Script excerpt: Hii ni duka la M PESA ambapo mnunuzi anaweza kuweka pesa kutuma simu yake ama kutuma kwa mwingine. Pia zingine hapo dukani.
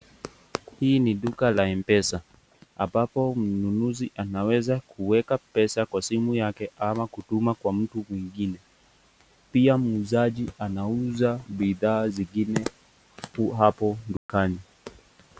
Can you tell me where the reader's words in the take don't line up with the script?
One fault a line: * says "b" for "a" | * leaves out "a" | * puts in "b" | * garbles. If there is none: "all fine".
* says "kwa" for "kutuma"
* puts in "mtu"
* puts in "muuzaji anauza bidhaa"